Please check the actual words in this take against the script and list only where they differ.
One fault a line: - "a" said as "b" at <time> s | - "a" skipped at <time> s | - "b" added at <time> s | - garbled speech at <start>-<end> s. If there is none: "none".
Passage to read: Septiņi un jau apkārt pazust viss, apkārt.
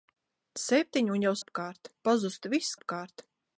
none